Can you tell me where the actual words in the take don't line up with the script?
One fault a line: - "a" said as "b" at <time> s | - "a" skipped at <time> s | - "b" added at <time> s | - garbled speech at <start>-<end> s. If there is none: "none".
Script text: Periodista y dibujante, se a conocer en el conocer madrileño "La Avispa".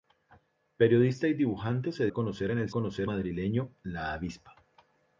none